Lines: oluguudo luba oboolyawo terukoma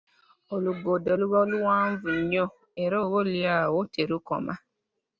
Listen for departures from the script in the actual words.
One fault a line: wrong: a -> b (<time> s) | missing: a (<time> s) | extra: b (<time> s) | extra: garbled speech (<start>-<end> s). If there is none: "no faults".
extra: luwanvu nnyo era (1.5 s)